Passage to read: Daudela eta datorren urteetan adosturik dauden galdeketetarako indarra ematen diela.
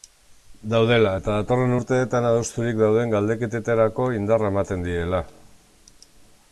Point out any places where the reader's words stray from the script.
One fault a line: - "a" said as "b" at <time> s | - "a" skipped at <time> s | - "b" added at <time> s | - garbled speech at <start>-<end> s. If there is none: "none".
none